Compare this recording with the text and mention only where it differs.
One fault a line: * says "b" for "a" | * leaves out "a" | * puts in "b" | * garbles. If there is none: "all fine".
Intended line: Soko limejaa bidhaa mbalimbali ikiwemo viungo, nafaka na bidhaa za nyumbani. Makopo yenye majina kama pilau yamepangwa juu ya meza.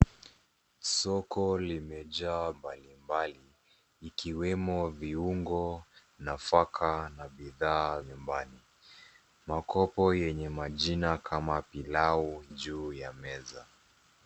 * leaves out "bidhaa"
* leaves out "za"
* leaves out "yamepangwa"